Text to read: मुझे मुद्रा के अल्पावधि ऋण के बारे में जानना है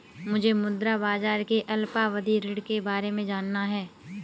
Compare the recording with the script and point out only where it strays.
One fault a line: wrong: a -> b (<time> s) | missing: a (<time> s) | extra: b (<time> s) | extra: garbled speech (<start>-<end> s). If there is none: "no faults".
extra: बाजार (1.0 s)